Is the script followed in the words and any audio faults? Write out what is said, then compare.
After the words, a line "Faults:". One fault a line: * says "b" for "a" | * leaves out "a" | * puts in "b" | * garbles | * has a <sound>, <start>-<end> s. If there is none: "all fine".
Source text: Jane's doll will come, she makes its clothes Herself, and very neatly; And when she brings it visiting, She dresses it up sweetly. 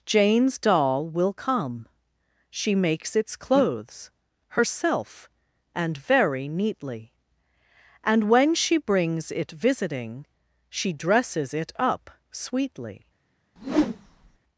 Jane's doll will come, she makes its clothes Herself, and very neatly; And when she brings it visiting, She dresses it up sweetly.
Faults:
* has a whoosh, 13.6-14.4 s